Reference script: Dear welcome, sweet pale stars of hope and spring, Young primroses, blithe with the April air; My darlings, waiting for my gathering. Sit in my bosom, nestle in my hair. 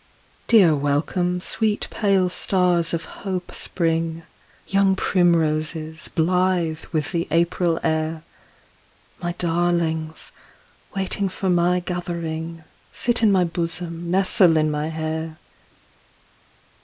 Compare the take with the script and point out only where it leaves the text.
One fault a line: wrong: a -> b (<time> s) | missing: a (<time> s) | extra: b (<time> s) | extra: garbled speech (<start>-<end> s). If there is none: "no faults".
missing: and (3.5 s)